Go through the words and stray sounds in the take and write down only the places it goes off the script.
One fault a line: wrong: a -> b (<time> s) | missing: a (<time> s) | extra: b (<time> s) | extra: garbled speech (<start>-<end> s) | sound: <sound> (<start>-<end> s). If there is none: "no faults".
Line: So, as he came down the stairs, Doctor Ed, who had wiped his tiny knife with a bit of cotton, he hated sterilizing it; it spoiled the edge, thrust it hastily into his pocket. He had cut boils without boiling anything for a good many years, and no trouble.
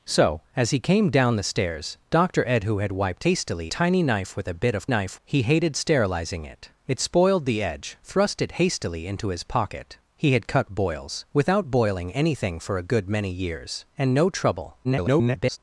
wrong: his -> hastily (3.2 s)
wrong: cotton -> knife (4.9 s)
extra: garbled speech (14.8-15.6 s)